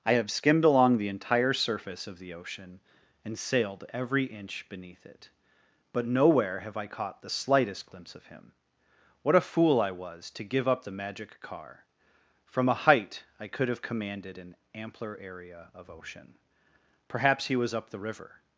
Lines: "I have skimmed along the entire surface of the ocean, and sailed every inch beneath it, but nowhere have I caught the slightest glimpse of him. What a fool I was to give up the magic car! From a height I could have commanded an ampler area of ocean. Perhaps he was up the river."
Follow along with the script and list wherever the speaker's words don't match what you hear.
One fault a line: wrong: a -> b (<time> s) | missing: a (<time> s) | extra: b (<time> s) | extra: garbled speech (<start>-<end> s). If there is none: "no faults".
no faults